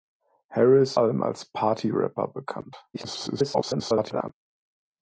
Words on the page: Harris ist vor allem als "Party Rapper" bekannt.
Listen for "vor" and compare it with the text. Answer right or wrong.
wrong